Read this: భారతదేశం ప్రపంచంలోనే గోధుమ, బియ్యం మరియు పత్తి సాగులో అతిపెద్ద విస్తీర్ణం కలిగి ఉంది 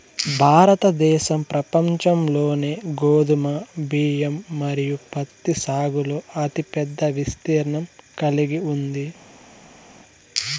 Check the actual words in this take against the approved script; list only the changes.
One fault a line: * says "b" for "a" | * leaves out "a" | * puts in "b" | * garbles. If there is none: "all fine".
all fine